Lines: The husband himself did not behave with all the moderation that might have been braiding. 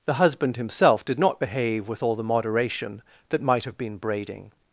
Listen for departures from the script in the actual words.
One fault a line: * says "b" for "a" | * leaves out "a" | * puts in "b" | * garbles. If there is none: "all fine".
all fine